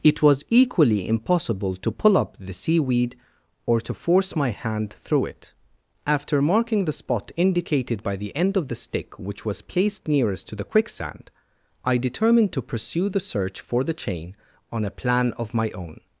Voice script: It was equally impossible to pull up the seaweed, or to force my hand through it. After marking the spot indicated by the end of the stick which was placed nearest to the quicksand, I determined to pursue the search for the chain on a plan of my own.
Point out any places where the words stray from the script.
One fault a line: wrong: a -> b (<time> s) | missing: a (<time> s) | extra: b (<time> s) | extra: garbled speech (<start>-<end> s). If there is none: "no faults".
no faults